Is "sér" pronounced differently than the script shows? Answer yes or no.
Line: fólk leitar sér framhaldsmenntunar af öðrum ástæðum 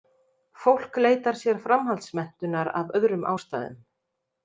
no